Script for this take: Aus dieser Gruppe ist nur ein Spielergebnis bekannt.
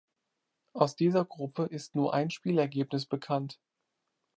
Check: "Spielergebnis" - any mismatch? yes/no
no